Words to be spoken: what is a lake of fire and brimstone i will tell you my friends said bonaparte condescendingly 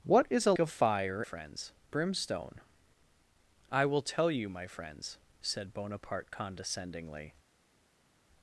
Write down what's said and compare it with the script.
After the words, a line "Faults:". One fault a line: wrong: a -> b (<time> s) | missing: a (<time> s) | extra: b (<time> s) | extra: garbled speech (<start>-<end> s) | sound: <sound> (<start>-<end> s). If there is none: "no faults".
what is a of fire friends brimstone i will tell you my friends said bonaparte condescendingly
Faults:
missing: lake (0.5 s)
wrong: and -> friends (1.2 s)